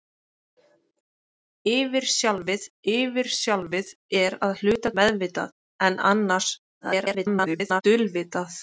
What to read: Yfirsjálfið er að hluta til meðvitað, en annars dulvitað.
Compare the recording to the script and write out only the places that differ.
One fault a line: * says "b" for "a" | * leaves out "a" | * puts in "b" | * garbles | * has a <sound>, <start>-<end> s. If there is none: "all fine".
* puts in "yfirsjálfið"
* leaves out "til"
* garbles